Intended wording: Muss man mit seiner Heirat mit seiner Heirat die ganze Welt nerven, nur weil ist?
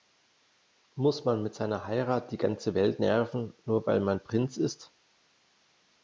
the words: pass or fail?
fail